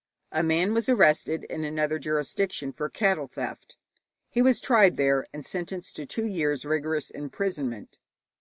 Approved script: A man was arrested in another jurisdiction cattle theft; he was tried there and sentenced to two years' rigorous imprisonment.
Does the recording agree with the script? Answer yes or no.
no